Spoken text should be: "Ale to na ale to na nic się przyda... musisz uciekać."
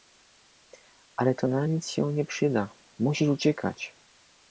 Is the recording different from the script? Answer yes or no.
yes